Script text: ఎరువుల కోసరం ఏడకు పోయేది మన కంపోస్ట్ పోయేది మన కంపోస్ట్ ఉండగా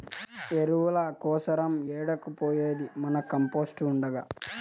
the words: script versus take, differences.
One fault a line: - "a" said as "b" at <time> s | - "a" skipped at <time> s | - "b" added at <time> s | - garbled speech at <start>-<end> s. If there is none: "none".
- "పోయేది మన కంపోస్ట్" skipped at 3.8 s